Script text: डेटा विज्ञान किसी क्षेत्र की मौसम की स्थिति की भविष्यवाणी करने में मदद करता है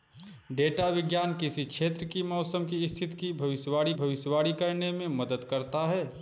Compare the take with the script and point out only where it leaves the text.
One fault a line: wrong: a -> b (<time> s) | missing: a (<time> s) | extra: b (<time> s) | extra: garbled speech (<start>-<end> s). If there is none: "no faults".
extra: भविष्यवाणी (3.9 s)